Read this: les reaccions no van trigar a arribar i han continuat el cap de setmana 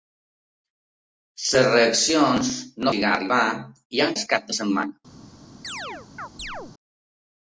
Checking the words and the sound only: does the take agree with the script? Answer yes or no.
no